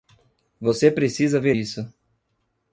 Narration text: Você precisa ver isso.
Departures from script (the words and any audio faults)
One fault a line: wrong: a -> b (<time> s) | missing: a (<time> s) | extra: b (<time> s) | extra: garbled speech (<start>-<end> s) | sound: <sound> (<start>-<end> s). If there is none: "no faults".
no faults